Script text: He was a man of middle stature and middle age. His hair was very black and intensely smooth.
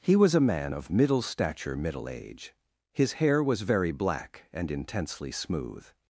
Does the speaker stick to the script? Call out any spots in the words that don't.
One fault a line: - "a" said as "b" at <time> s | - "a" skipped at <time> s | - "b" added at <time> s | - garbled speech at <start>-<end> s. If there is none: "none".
- "and" skipped at 1.8 s